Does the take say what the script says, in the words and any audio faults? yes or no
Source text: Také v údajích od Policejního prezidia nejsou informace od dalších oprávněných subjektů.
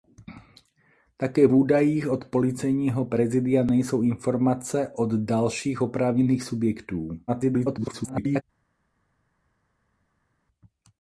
no